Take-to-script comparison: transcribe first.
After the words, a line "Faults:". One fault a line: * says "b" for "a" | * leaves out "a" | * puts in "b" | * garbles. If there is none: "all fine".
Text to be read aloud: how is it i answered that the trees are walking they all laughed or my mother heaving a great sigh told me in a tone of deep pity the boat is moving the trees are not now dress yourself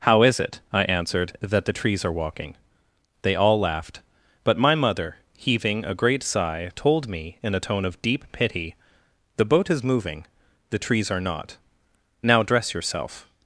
how is it i answered that the trees are walking they all laughed but my mother heaving a great sigh told me in a tone of deep pity the boat is moving the trees are not now dress yourself
Faults:
* says "but" for "or"